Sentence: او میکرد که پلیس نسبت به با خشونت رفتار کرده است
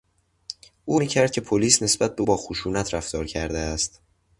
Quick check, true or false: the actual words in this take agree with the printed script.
true